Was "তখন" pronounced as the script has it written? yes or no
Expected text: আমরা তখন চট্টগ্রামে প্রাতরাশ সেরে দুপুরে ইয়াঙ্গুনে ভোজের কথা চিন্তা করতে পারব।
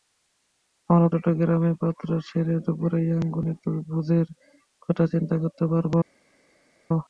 no